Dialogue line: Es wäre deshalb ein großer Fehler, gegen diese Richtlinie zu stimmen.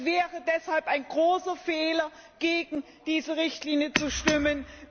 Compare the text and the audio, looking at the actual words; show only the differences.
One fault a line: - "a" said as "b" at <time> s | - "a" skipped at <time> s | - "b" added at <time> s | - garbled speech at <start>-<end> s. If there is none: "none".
none